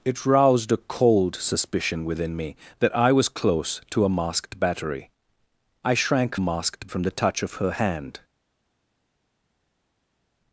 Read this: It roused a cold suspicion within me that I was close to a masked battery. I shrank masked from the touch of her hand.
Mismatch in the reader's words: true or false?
false